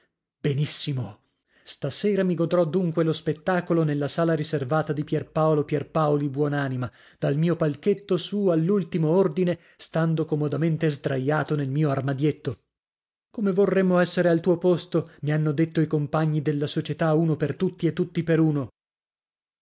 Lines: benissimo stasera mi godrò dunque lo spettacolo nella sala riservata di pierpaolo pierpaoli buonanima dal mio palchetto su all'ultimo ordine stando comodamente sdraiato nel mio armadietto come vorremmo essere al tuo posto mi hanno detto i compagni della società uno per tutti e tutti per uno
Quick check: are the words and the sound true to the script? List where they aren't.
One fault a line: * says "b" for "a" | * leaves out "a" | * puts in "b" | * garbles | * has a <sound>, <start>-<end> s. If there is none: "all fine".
all fine